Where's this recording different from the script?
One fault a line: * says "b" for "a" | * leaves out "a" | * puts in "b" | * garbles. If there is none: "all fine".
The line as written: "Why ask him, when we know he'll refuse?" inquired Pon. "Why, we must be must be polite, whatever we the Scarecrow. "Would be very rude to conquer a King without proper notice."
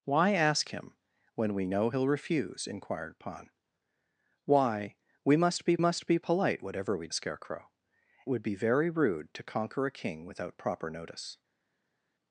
all fine